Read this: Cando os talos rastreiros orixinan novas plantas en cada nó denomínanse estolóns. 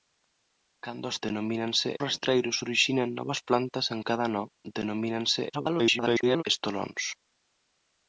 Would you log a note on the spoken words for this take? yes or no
yes